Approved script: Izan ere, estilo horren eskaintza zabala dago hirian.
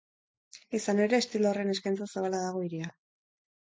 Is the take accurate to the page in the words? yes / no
yes